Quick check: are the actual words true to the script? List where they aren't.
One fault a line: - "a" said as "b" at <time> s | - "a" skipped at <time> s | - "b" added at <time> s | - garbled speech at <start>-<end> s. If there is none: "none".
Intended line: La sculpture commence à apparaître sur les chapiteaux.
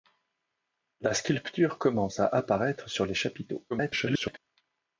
- garbled speech at 3.7-4.4 s